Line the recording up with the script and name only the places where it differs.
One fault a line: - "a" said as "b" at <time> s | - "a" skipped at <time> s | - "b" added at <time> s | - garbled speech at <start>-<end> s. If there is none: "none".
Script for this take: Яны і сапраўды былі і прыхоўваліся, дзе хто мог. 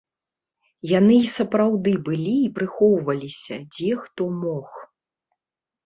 none